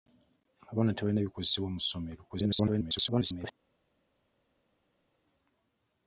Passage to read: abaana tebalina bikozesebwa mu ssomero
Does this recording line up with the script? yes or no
no